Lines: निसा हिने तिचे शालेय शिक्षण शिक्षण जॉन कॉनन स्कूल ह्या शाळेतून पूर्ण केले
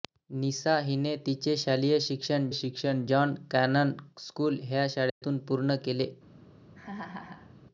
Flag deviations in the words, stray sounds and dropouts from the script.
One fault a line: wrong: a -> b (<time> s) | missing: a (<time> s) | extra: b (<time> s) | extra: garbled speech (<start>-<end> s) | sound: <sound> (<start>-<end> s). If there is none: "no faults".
sound: dropout (5.1-5.2 s)
sound: laugh (6.7-7.5 s)